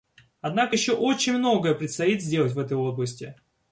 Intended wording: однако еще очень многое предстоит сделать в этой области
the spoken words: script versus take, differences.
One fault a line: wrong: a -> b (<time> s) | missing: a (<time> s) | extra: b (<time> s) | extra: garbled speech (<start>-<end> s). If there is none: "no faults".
no faults